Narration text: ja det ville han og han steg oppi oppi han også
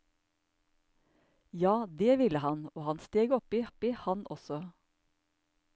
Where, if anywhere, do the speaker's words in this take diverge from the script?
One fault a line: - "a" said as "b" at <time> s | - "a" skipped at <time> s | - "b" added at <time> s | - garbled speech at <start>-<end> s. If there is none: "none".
none